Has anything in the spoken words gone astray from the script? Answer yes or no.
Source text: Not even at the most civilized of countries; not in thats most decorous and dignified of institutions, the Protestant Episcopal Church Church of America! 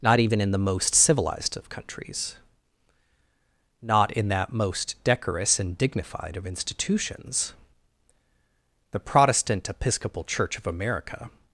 yes